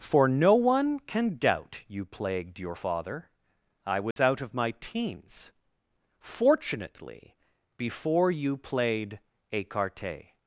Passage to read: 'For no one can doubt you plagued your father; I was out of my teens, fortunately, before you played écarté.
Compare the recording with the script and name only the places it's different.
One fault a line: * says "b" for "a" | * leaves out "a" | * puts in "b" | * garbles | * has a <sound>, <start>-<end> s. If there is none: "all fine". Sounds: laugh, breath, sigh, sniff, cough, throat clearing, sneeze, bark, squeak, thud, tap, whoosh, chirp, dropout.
* has a dropout, 4.1-4.2 s